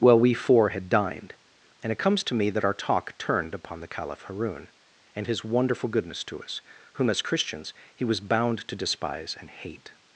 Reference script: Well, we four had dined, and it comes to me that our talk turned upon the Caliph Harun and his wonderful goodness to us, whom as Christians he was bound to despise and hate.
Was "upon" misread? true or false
false